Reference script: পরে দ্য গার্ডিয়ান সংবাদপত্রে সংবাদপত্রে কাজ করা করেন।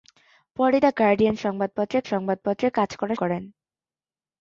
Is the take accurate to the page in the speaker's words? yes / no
yes